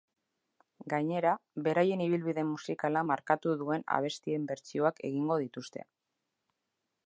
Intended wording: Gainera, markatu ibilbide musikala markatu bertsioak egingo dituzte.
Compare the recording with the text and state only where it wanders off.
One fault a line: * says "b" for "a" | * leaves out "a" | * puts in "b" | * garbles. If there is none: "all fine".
* says "beraien" for "markatu"
* puts in "duen abestien"